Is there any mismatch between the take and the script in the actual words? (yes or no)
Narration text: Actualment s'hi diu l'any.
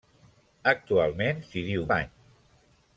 no